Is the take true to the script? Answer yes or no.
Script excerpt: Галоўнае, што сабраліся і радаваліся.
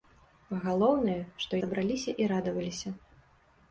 yes